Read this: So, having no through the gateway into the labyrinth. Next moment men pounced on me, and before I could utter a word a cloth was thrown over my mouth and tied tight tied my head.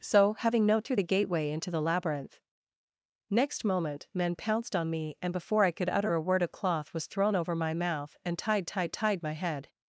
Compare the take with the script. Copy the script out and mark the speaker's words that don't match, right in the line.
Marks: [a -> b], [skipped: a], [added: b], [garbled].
So, having no through the gateway into the labyrinth. Next moment men pounced on me, and before I could utter a word a cloth was thrown over my mouth and tied tight tied my head.